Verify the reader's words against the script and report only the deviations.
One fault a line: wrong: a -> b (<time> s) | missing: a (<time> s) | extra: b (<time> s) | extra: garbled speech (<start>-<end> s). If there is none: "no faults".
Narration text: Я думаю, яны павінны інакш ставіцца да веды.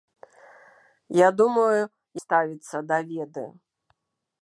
missing: яны павінны інакш (1.8 s)